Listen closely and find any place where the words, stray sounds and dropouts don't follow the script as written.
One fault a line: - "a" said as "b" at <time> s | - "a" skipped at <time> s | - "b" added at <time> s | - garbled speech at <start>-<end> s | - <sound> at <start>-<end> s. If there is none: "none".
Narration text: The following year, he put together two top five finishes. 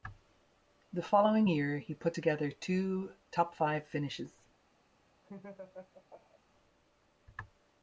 - laugh at 5.2-6.4 s